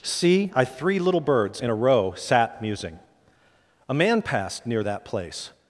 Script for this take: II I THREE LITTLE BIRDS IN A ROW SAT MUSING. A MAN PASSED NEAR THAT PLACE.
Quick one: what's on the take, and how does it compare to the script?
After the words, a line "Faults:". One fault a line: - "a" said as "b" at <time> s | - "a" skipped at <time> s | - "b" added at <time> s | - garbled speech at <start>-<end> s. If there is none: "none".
See I THREE LITTLE BIRDS IN A ROW SAT MUSING. A MAN PASSED NEAR THAT PLACE.
Faults:
- "II" said as "See" at 0.0 s